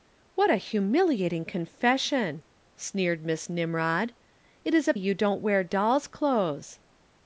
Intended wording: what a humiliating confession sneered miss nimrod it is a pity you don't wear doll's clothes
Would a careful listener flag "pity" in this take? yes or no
yes